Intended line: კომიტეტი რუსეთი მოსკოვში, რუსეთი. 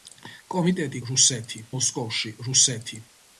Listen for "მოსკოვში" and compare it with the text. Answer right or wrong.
right